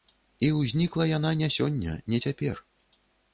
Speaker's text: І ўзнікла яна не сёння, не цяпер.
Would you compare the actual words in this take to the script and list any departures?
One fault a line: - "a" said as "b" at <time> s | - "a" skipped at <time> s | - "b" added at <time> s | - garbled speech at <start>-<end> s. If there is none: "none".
none